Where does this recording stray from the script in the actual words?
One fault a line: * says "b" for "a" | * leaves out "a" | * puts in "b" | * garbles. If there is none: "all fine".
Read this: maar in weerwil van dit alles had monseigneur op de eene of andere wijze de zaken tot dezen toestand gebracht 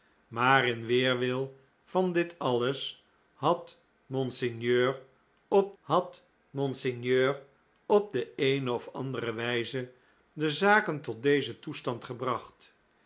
* puts in "had monseigneur op"